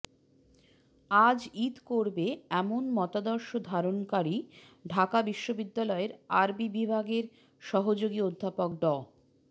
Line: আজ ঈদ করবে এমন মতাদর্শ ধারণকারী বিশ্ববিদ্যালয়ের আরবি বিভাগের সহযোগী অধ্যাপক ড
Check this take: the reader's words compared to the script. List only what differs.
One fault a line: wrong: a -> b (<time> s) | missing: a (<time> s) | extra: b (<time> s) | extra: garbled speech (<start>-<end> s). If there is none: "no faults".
extra: ঢাকা (4.8 s)